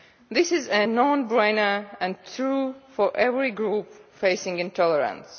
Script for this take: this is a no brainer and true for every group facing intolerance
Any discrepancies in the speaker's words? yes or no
no